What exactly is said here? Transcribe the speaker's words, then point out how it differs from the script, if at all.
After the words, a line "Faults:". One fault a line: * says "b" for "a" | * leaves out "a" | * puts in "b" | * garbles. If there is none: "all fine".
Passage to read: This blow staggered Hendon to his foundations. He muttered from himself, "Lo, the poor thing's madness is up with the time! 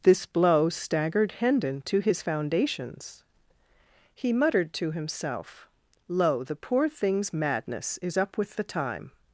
This blow staggered Hendon to his foundations. He muttered to himself, "Lo, the poor thing's madness is up with the time!
Faults:
* says "to" for "from"